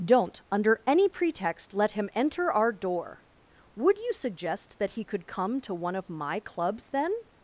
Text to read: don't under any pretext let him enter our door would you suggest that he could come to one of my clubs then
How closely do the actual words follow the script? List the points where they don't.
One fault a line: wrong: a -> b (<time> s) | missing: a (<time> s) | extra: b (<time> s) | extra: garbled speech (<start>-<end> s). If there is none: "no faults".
no faults